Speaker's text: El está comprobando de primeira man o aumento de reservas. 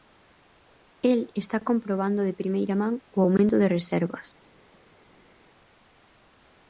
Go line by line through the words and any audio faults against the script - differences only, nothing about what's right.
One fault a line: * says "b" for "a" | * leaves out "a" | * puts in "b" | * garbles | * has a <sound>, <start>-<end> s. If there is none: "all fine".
all fine